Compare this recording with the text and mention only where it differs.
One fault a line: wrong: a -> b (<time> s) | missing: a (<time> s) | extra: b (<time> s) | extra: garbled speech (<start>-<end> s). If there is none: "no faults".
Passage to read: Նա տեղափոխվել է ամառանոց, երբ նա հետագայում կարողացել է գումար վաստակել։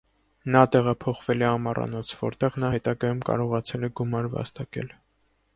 wrong: երբ -> որտեղ (2.2 s)